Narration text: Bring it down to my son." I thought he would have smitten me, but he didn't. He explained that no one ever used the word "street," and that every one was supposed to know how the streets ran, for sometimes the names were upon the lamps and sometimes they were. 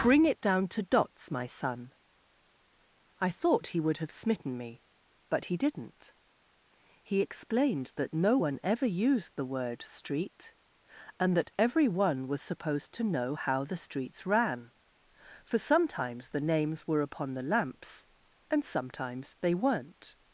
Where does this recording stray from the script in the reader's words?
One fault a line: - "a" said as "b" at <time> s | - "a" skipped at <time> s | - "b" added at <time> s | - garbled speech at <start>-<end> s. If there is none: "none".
- "dots" added at 0.8 s
- "were" said as "weren't" at 19.5 s